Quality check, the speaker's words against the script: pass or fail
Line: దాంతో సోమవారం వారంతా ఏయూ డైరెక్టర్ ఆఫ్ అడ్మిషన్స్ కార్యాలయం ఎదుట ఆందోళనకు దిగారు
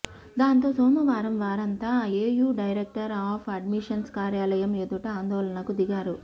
pass